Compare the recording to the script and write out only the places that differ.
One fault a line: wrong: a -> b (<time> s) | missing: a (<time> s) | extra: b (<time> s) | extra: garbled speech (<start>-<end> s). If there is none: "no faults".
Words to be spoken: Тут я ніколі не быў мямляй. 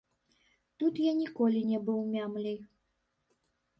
no faults